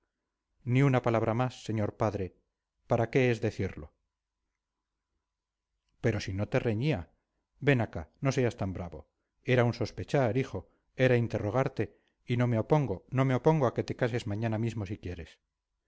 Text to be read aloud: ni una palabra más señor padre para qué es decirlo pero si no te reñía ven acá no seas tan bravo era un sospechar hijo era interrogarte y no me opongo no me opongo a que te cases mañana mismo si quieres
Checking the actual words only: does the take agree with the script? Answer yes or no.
yes